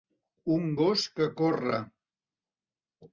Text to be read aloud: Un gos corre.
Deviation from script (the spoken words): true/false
true